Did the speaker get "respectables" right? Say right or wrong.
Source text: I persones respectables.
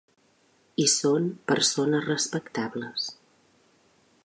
right